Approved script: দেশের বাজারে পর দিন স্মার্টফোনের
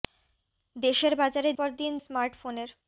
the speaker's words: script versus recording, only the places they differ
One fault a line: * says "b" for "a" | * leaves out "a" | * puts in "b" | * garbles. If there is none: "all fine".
all fine